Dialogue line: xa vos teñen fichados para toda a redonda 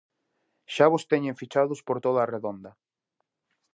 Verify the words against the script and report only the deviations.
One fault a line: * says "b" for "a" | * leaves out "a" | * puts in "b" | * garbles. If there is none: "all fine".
* says "por" for "para"